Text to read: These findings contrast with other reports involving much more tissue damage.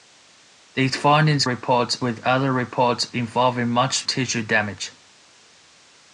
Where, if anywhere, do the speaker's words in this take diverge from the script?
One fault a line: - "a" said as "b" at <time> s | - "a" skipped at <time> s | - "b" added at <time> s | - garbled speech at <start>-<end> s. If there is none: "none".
- "contrast" said as "reports" at 1.4 s
- "more" skipped at 4.1 s